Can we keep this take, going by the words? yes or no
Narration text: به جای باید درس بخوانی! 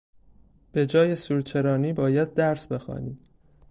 no